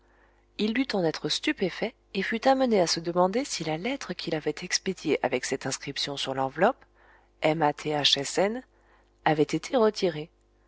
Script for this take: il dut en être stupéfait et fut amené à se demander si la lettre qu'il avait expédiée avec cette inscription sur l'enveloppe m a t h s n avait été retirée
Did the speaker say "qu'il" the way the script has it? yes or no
yes